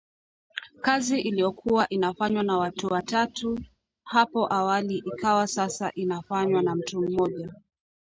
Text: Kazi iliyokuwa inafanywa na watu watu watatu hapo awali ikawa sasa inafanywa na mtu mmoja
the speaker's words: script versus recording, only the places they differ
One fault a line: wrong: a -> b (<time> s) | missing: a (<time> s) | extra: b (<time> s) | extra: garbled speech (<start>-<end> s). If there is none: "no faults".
missing: watu (2.9 s)